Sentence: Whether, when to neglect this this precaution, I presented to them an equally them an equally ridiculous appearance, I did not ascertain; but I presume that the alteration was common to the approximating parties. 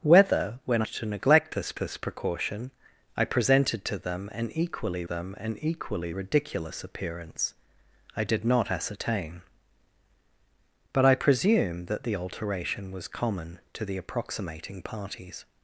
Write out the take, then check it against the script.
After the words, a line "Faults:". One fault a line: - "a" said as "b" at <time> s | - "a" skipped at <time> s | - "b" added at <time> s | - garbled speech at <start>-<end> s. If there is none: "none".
Whether, when to neglect this this precaution, I presented to them an equally them an equally ridiculous appearance, I did not ascertain; but I presume that the alteration was common to the approximating parties.
Faults:
none